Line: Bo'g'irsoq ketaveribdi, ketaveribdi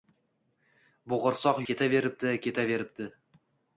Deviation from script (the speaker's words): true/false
false